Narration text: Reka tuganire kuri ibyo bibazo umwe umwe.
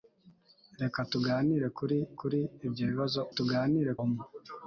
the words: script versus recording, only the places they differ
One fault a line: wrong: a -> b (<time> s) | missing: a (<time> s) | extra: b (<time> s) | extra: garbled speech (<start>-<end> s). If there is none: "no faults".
extra: kuri (2.2 s)
wrong: umwe -> tuganire (3.4 s)